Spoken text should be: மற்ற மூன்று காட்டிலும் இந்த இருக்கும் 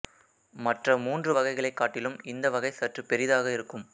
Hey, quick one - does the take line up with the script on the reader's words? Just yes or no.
no